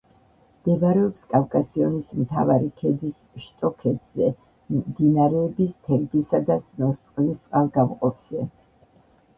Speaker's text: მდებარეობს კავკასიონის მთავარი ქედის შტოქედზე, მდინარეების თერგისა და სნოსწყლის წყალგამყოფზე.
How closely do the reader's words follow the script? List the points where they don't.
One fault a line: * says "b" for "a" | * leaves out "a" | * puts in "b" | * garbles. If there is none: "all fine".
all fine